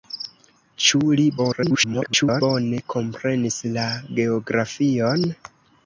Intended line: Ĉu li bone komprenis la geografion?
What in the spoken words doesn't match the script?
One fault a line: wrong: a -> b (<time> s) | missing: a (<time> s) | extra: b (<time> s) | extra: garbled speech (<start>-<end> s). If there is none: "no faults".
extra: garbled speech (1.4-2.4 s)